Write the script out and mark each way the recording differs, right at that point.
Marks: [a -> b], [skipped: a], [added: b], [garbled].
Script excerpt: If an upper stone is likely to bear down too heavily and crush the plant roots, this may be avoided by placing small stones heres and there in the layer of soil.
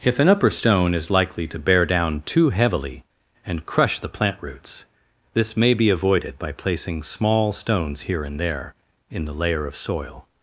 If an upper stone is likely to bear down too heavily and crush the plant roots, this may be avoided by placing small stones [heres -> here] and there in the layer of soil.